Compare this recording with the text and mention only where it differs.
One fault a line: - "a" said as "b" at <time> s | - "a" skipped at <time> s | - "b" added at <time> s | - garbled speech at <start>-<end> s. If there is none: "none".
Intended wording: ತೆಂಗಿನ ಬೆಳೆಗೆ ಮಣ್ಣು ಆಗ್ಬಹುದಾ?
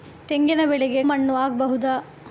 none